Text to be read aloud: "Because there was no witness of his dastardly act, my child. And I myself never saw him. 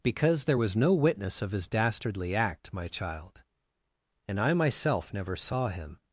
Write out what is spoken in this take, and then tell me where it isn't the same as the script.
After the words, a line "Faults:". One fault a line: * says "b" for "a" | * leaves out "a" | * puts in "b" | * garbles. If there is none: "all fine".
"Because there was no witness of his dastardly act, my child. And I myself never saw him.
Faults:
all fine